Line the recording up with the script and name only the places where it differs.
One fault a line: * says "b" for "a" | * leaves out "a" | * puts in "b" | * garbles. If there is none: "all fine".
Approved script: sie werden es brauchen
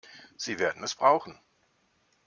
all fine